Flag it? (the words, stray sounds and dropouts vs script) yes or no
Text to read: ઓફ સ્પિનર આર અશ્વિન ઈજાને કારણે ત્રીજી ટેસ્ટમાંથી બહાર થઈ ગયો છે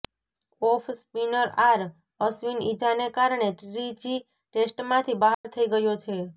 yes